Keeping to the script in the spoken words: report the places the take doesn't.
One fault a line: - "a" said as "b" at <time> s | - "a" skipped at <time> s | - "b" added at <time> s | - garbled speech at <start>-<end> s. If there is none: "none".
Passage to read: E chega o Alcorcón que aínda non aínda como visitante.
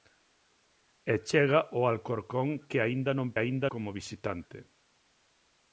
none